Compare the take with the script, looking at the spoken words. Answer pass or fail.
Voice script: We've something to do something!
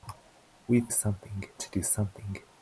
pass